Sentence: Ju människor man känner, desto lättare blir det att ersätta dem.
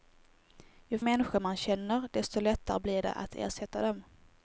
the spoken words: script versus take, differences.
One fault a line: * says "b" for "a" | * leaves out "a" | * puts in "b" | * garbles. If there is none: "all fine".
all fine